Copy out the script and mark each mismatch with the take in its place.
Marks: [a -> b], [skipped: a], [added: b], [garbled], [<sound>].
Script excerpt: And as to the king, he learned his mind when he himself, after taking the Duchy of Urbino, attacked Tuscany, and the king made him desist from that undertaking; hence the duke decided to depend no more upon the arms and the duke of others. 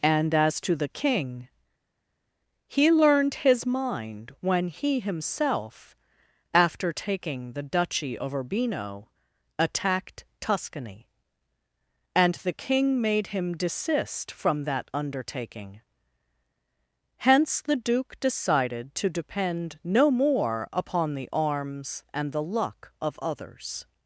And as to the king, he learned his mind when he himself, after taking the Duchy of Urbino, attacked Tuscany, and the king made him desist from that undertaking; hence the duke decided to depend no more upon the arms and the [duke -> luck] of others.